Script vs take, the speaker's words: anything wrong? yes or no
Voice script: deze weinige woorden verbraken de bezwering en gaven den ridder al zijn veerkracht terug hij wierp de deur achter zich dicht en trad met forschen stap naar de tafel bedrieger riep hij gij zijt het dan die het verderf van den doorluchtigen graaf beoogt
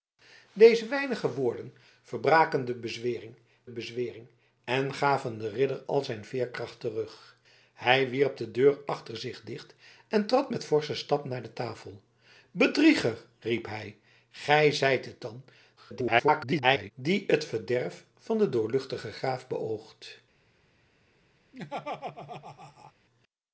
yes